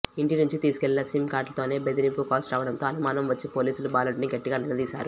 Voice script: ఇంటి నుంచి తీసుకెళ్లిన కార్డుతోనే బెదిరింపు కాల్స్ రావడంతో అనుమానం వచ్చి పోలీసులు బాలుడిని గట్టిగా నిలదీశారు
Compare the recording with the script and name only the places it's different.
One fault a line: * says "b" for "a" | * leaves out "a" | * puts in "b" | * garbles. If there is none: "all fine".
* puts in "సిమ్"